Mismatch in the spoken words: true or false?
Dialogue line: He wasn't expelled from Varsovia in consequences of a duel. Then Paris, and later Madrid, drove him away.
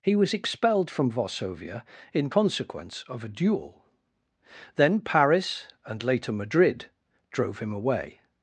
true